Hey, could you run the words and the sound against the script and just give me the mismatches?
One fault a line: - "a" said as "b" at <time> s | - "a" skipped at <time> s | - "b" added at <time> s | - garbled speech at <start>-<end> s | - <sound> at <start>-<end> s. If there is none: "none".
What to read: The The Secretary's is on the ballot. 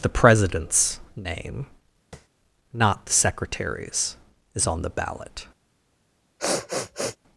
- "President's name not" added at 0.1 s
- tap at 2.1-2.3 s
- sniff at 6.4-7.2 s